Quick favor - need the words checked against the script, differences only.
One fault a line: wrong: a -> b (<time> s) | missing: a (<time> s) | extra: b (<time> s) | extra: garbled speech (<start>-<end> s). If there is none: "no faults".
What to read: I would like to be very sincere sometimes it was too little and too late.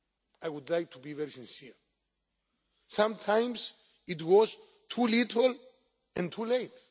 no faults